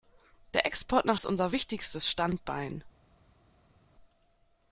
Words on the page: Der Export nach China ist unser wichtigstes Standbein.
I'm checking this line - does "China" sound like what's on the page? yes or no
no